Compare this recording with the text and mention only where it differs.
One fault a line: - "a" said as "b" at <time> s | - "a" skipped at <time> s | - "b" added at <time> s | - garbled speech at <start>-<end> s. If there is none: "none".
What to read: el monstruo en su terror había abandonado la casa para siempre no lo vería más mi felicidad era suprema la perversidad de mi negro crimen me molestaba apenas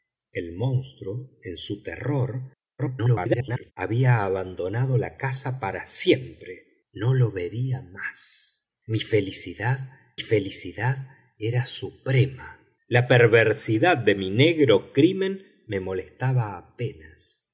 - garbled speech at 2.8-3.7 s
- "felicidad" added at 10.2 s